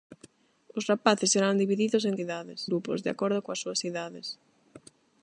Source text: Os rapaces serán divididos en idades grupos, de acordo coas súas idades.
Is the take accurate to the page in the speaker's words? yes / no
yes